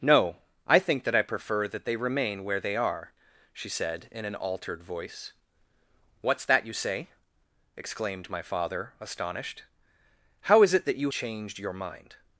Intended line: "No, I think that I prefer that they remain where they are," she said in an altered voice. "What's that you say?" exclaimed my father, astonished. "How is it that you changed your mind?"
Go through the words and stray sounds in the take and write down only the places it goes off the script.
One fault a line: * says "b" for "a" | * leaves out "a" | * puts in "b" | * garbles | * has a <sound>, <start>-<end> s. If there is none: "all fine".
all fine